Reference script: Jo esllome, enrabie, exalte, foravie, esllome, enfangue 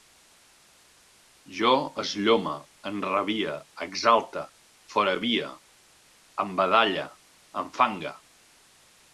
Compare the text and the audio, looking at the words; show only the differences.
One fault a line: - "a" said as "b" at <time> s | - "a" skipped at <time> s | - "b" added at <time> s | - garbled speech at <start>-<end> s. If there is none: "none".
- "esllome" said as "embadalle" at 6.5 s